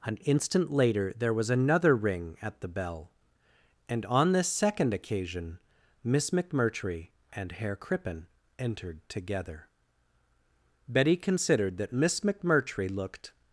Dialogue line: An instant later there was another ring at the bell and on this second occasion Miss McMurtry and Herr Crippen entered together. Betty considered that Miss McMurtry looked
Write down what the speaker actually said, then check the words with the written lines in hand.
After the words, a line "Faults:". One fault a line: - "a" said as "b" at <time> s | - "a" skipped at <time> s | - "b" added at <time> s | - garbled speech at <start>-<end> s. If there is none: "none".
An instant later there was another ring at the bell and on this second occasion Miss McMurtry and Herr Crippen entered together. Betty considered that Miss McMurtry looked
Faults:
none